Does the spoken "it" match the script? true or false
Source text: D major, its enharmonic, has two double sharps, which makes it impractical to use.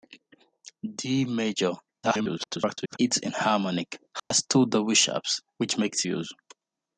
false